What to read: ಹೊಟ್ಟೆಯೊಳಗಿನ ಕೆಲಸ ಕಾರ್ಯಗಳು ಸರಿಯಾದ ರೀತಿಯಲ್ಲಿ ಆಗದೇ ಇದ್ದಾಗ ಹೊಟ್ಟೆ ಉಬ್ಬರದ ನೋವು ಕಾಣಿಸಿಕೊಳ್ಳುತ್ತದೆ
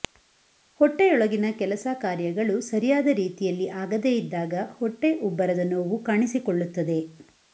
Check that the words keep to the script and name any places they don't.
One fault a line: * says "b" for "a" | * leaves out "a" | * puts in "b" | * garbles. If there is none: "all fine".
all fine